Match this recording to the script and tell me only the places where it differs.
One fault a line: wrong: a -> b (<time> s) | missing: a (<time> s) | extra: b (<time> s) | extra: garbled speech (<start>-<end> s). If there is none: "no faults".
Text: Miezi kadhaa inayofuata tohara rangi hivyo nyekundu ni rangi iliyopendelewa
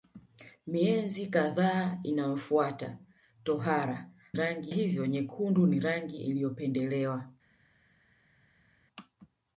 no faults